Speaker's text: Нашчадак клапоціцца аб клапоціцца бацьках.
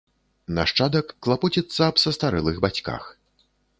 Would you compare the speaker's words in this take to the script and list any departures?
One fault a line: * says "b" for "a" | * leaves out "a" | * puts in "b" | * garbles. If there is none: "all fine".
* says "састарэлых" for "клапоціцца"